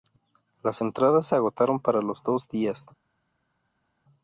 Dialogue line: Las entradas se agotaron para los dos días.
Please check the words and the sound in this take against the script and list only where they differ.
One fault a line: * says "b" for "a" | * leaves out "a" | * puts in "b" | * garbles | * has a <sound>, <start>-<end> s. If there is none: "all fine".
all fine